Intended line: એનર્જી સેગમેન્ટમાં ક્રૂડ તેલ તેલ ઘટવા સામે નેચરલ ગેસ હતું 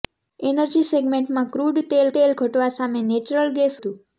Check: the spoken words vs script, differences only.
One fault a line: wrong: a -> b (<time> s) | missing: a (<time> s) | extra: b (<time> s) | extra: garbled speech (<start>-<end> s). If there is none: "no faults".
no faults